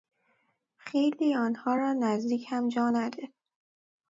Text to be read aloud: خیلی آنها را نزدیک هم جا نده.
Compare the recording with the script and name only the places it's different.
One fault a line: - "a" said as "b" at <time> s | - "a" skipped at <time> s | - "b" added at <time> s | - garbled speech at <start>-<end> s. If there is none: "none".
none